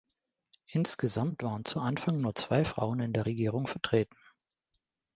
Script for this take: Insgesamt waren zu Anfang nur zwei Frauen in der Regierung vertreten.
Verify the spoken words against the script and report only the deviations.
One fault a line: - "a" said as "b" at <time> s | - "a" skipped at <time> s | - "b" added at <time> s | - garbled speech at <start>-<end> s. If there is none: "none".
none